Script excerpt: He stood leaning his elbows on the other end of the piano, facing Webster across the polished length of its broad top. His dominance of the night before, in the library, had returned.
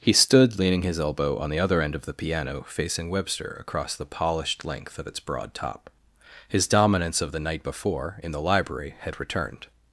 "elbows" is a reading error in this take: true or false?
true